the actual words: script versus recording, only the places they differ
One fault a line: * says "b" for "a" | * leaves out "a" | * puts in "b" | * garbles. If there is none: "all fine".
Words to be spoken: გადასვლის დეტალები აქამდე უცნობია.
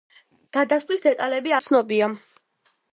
* leaves out "აქამდე"